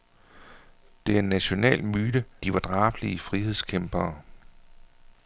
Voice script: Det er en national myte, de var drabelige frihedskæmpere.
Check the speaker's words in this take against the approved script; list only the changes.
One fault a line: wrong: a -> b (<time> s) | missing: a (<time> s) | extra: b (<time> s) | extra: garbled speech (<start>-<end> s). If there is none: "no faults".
no faults